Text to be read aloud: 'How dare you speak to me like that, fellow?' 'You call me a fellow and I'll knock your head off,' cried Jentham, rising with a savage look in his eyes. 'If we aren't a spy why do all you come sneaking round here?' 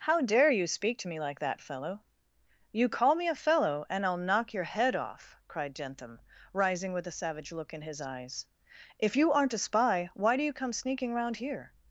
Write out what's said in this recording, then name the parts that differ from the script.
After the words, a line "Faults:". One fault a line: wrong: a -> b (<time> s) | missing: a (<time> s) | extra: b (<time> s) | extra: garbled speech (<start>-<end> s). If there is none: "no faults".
'How dare you speak to me like that, fellow?' 'You call me a fellow and I'll knock your head off,' cried Jentham, rising with a savage look in his eyes. 'If you aren't a spy why do you come sneaking round here?'
Faults:
wrong: we -> you (9.2 s)
missing: all (10.4 s)